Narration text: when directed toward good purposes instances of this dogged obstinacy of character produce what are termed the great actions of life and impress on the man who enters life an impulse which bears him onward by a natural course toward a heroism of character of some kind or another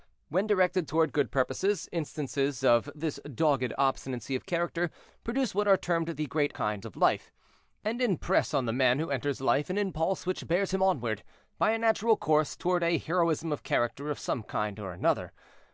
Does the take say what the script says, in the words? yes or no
no